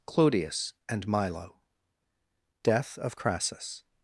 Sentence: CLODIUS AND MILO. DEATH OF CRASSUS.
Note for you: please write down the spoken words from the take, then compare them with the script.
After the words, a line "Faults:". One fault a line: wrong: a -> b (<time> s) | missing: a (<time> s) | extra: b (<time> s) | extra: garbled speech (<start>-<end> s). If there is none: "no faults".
CLODIUS AND MILO. DEATH OF CRASSUS.
Faults:
no faults